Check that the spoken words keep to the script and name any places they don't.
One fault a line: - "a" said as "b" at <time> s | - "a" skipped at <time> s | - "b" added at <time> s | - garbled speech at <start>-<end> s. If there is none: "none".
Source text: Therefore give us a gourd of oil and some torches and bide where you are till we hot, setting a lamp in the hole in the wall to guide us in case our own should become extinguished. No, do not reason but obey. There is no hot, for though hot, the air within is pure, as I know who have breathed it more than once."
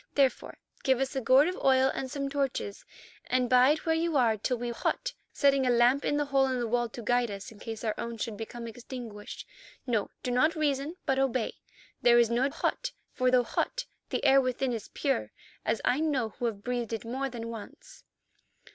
none